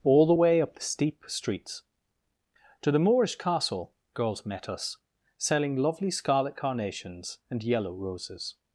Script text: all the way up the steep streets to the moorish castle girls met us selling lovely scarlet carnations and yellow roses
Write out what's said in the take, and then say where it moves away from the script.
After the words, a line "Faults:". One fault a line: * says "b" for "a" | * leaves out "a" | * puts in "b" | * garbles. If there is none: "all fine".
all the way up the steep streets to the moorish castle girls met us selling lovely scarlet carnations and yellow roses
Faults:
all fine